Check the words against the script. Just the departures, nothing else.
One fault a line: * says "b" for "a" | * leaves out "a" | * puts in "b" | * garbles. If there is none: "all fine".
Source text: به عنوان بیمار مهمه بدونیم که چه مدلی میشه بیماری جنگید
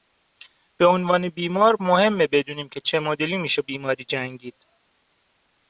all fine